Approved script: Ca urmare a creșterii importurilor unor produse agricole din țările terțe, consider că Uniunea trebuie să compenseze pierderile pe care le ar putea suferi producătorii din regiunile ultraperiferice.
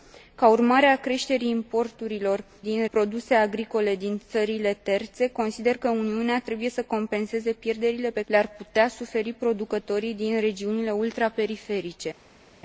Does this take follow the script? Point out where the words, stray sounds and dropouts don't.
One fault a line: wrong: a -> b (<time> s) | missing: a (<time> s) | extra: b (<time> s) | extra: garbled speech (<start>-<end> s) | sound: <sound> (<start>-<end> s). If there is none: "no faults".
wrong: unor -> din (2.6 s)
missing: care (8.2 s)